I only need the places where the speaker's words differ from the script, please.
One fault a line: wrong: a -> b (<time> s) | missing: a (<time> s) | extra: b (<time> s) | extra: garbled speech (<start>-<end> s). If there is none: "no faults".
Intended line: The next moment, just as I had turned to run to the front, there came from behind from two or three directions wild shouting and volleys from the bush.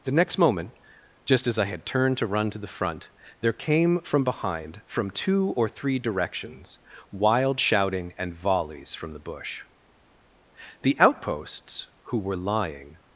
extra: The outposts who were lying (10.8 s)